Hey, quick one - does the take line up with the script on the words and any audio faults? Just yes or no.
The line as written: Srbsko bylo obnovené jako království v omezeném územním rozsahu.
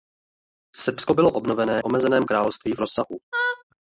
no